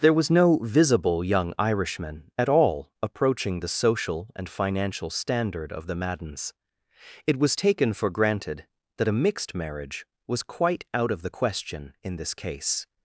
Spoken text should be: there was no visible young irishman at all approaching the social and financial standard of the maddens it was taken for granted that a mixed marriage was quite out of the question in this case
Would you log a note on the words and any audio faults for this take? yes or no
no